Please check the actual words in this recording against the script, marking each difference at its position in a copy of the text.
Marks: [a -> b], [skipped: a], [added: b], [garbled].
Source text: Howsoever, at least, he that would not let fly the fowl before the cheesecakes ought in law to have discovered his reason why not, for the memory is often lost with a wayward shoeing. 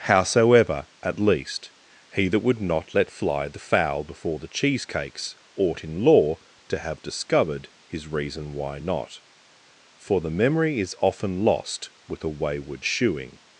Howsoever, at least, he that would not let fly the fowl before the cheesecakes ought in law to have discovered his reason why not, for the memory is often lost with a wayward shoeing.